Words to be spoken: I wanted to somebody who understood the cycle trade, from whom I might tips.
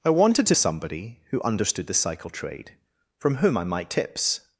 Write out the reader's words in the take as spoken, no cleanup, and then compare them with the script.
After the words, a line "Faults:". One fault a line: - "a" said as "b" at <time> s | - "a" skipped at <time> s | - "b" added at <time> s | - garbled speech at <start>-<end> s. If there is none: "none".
I wanted to somebody who understood the cycle trade, from whom I might tips.
Faults:
none